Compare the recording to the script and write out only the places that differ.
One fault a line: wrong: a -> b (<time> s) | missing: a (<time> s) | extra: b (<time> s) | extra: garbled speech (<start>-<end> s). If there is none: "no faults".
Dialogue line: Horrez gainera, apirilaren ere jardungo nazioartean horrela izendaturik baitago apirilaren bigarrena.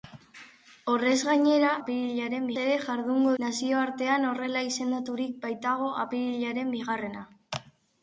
no faults